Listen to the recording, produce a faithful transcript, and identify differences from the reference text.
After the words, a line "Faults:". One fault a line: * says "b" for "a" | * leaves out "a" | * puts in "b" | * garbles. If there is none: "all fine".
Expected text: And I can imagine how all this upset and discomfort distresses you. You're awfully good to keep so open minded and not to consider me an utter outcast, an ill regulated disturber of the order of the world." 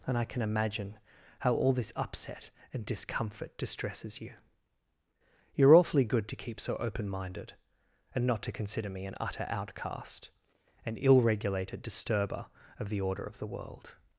And I can imagine how all this upset and discomfort distresses you. You're awfully good to keep so open minded and not to consider me an utter outcast, an ill regulated disturber of the order of the world."
Faults:
all fine